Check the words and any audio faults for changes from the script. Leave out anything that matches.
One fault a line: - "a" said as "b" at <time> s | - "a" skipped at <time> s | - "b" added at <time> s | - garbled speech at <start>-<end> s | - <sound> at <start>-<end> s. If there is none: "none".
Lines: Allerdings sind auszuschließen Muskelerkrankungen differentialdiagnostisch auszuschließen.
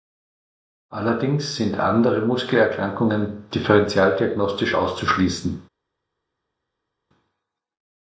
- "auszuschließen" said as "andere" at 1.8 s